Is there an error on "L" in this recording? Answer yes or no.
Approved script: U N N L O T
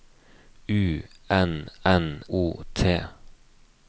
yes